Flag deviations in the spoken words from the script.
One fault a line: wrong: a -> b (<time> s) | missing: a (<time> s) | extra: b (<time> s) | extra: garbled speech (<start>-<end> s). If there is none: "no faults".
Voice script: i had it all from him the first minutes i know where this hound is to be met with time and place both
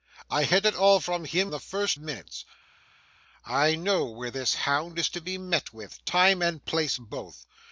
no faults